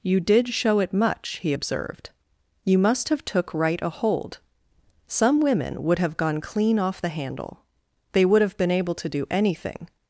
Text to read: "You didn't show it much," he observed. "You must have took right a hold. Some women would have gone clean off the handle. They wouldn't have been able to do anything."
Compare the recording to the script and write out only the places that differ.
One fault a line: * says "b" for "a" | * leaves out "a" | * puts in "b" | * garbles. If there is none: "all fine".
* says "did" for "didn't"
* says "would" for "wouldn't"